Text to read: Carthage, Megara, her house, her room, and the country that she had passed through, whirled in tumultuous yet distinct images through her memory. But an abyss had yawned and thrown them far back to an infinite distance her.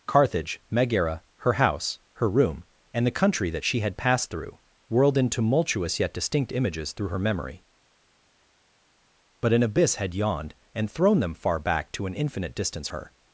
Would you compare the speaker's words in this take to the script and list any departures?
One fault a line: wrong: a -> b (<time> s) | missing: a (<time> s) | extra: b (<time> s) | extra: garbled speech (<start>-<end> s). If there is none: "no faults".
no faults